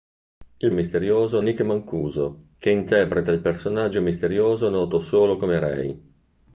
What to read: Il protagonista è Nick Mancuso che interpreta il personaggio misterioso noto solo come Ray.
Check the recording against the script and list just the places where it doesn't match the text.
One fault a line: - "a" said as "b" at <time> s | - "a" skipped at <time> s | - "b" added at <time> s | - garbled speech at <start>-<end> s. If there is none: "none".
- "protagonista" said as "misterioso" at 0.7 s